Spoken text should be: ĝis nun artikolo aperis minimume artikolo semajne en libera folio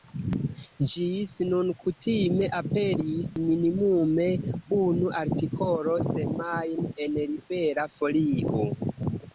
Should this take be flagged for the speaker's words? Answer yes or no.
yes